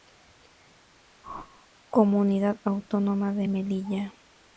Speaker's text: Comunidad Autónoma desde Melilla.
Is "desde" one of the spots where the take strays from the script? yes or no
yes